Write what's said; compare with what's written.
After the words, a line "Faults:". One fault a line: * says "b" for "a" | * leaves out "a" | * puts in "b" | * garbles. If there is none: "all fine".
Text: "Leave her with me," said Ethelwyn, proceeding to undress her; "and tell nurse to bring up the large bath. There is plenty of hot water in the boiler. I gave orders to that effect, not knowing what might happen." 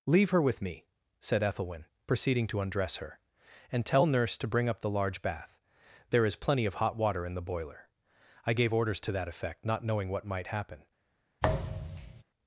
"Leave her with me," said Ethelwyn, proceeding to undress her; "and tell nurse to bring up the large bath. There is plenty of hot water in the boiler. I gave orders to that effect, not knowing what might happen."
Faults:
all fine